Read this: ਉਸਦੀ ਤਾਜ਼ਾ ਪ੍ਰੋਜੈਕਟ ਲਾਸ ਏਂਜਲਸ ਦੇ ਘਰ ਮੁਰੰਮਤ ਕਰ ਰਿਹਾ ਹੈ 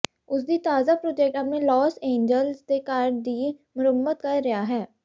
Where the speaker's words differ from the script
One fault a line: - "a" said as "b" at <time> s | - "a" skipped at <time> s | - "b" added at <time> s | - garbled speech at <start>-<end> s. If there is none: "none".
- "ਆਪਣੇ" added at 1.4 s
- "ਦੀ" added at 3.2 s